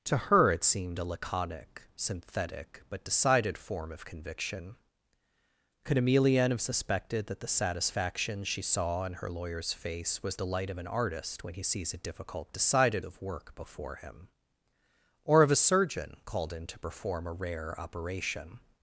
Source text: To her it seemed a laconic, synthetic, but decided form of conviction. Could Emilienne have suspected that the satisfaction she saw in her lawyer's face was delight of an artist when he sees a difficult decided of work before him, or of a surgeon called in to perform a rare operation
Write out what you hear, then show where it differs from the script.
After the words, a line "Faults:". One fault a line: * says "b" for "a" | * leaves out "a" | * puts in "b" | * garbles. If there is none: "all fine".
To her it seemed a laconic, synthetic, but decided form of conviction. Could Emilienne have suspected that the satisfaction she saw in her lawyer's face was delight of an artist when he sees a difficult decided of work before him, or of a surgeon called in to perform a rare operation
Faults:
all fine